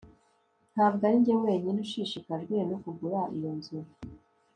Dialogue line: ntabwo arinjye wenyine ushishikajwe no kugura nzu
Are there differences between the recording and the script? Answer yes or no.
yes